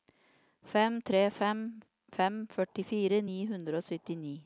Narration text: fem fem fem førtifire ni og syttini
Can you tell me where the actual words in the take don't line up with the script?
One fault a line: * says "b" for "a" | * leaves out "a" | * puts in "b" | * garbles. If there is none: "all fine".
* puts in "tre"
* puts in "hundre"